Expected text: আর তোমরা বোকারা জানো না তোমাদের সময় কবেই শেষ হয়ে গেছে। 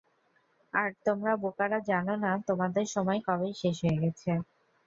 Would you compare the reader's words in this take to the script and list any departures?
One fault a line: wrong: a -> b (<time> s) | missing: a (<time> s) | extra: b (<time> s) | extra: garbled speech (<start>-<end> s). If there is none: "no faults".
no faults